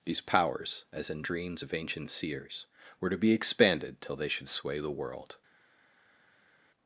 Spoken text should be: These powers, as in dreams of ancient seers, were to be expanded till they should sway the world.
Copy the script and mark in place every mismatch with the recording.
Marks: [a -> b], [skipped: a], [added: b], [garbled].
These powers, as in dreams of ancient seers, were to be expanded till they should sway the world.